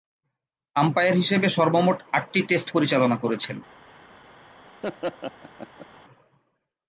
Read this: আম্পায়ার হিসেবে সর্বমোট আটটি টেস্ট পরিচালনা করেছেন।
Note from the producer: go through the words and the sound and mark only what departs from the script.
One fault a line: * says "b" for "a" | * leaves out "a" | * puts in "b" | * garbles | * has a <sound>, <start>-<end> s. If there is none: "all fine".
* has a laugh, 4.8-5.9 s